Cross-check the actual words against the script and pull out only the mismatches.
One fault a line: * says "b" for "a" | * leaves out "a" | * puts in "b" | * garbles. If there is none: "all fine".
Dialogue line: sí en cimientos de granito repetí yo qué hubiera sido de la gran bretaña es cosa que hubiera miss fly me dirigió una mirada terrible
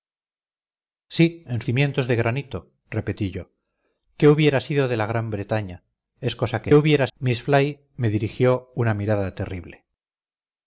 all fine